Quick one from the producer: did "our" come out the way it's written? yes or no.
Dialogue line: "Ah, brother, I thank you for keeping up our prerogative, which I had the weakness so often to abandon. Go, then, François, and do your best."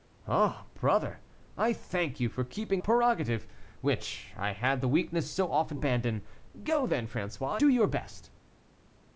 no